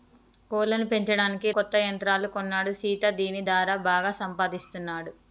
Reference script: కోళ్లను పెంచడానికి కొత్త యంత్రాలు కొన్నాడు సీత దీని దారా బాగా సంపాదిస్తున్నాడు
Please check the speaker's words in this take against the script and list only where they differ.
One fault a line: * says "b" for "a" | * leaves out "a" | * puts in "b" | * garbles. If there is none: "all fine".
all fine